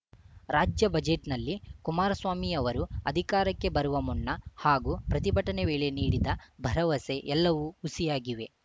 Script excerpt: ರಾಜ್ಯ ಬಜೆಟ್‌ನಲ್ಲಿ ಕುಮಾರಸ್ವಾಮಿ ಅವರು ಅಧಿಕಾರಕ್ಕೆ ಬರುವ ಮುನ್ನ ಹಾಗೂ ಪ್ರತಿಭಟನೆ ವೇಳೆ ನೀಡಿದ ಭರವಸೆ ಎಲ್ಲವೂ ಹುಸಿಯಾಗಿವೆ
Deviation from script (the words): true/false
false